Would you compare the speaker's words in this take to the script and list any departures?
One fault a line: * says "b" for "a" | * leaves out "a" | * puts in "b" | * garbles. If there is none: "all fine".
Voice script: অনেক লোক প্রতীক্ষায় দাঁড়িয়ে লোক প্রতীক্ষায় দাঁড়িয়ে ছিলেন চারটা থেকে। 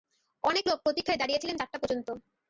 * leaves out "লোক প্রতীক্ষায় দাঁড়িয়ে"
* says "পর্যন্ত" for "থেকে"